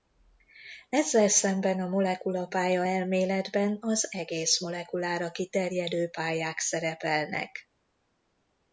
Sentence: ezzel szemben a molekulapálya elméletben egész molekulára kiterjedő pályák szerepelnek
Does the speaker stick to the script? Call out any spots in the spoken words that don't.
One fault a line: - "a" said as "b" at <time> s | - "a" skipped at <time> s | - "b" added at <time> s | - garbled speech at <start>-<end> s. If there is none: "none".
- "az" added at 3.8 s